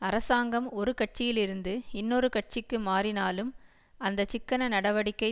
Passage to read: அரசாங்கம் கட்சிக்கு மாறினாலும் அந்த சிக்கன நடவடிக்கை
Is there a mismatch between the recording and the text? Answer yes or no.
yes